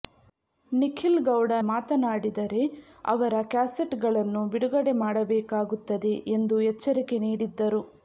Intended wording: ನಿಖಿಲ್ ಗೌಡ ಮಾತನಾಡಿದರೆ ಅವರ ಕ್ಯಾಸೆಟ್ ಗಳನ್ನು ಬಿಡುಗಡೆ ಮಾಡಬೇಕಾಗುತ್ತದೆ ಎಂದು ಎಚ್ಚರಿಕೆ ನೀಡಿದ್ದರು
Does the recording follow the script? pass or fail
pass